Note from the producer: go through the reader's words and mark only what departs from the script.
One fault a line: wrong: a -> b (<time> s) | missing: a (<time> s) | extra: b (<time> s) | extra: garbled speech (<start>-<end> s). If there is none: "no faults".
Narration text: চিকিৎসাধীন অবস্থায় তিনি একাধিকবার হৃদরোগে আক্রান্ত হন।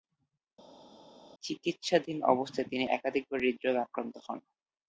no faults